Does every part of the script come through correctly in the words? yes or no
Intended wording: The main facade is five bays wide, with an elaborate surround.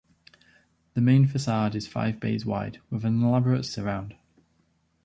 yes